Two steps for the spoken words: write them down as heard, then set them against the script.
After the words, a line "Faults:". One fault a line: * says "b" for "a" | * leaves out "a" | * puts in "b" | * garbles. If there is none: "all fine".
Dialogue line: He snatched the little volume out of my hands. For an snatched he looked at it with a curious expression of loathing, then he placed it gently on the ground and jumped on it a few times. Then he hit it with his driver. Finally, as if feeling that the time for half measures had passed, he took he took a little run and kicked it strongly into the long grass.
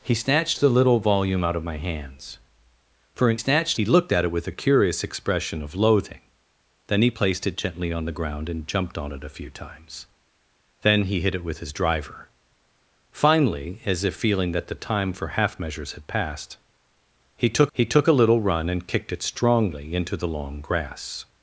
He snatched the little volume out of my hands. For an snatched he looked at it with a curious expression of loathing, then he placed it gently on the ground and jumped on it a few times. Then he hit it with his driver. Finally, as if feeling that the time for half measures had passed, he took he took a little run and kicked it strongly into the long grass.
Faults:
all fine